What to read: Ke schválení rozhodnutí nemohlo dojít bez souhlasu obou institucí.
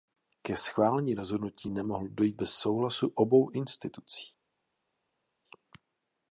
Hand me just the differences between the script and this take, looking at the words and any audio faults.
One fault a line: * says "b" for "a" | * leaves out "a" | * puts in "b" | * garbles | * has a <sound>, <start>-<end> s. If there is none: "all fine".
all fine